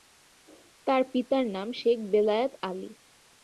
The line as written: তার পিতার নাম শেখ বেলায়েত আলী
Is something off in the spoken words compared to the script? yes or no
no